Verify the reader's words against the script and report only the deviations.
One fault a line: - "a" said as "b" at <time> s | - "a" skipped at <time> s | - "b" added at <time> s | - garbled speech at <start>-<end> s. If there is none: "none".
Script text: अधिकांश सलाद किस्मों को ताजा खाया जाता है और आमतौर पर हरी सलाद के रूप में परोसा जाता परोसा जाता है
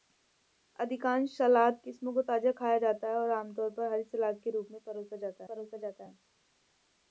none